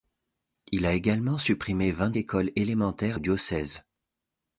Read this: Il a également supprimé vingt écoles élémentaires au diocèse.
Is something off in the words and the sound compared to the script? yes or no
no